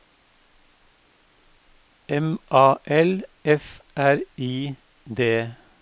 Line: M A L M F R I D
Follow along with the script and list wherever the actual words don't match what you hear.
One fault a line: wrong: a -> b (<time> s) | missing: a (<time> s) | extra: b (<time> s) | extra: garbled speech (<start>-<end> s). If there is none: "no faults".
missing: M (3.2 s)